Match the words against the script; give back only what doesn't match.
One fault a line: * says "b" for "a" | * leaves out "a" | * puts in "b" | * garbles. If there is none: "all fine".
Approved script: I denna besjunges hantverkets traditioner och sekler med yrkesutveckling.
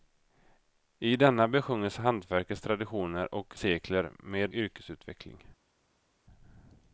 all fine